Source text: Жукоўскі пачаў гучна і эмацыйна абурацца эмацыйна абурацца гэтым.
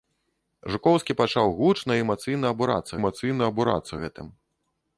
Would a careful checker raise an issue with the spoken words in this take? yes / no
no